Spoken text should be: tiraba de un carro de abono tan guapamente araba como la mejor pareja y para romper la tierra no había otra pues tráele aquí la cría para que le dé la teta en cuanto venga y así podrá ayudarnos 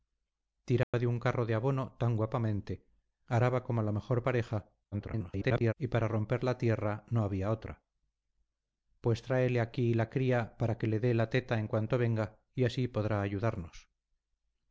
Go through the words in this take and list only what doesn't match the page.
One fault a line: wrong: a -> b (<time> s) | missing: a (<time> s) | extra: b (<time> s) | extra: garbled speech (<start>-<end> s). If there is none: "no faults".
extra: garbled speech (4.9-5.7 s)